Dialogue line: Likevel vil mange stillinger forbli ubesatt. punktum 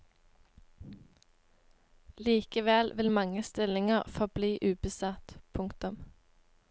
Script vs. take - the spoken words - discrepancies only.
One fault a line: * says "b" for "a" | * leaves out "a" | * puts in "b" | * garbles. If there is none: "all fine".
all fine